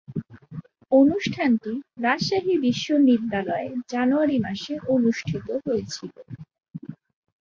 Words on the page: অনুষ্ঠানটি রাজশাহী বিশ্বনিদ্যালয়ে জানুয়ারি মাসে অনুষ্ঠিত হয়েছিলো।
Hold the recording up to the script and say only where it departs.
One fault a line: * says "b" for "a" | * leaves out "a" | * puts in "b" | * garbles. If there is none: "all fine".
all fine